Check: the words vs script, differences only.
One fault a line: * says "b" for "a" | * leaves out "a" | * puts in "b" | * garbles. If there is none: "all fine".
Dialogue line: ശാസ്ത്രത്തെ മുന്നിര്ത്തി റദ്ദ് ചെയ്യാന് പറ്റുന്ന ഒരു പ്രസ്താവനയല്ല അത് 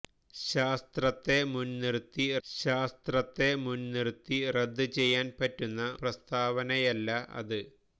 * puts in "ശാസ്ത്രത്തെ മുന്നിര്ത്തി"
* leaves out "ഒരു"